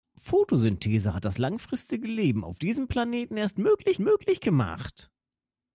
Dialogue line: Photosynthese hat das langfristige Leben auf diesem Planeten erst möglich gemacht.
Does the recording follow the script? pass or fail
fail